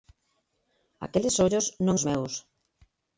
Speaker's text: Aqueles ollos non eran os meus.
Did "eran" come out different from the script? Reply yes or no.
yes